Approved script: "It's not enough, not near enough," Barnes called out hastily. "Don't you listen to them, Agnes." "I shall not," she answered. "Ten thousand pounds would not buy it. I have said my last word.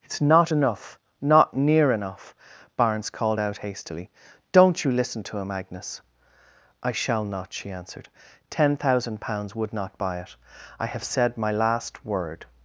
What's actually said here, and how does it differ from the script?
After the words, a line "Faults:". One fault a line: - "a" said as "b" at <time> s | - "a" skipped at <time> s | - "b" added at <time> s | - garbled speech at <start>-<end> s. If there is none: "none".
"It's not enough, not near enough," Barnes called out hastily. "Don't you listen to him, Agnes." "I shall not," she answered. "Ten thousand pounds would not buy it. I have said my last word.
Faults:
- "them" said as "him" at 5.4 s